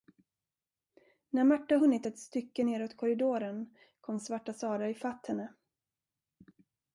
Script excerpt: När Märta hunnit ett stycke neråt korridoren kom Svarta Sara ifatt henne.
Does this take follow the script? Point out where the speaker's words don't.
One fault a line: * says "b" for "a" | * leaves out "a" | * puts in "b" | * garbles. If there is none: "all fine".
all fine